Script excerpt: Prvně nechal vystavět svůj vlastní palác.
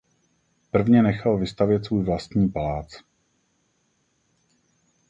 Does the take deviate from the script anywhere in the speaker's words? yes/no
no